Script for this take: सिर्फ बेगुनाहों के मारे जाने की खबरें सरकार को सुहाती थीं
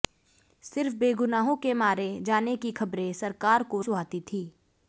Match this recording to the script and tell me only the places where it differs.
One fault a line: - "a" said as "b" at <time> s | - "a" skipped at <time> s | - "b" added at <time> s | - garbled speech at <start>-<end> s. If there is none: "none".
none